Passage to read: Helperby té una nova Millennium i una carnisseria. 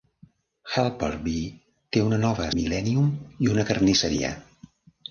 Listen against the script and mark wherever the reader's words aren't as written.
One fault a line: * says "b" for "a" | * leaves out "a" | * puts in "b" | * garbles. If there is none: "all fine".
all fine